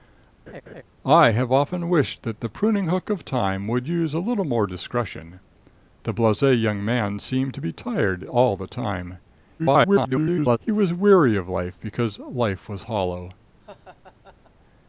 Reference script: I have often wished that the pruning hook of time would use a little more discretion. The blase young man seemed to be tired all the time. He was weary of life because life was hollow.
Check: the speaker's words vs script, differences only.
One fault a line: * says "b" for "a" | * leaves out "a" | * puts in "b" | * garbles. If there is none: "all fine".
* garbles